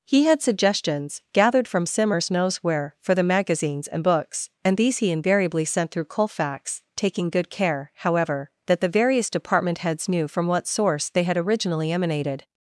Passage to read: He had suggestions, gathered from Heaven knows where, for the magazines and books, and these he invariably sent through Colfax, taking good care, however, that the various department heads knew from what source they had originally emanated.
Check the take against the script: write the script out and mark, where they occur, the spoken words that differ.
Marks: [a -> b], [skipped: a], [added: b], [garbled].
He had suggestions, gathered from [Heaven -> Simmers] knows where, for the magazines and books, and these he invariably sent through Colfax, taking good care, however, that the various department heads knew from what source they had originally emanated.